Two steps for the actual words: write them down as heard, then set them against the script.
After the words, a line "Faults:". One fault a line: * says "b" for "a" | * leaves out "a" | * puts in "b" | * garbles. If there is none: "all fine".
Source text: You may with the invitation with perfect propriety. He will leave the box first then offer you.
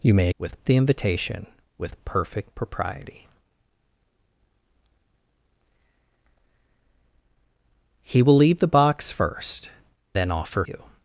You may with the invitation with perfect propriety. He will leave the box first then offer you.
Faults:
all fine